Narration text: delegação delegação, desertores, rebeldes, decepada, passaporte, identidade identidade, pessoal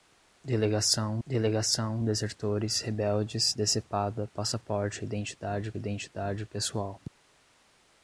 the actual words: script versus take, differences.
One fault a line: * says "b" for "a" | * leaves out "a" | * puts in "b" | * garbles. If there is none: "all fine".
all fine